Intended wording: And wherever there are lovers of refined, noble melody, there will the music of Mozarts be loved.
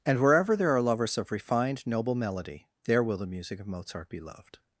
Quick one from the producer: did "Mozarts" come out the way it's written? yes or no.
no